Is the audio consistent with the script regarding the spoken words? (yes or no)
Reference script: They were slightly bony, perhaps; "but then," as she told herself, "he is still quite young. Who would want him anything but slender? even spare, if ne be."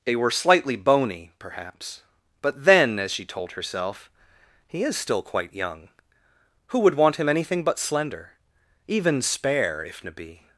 yes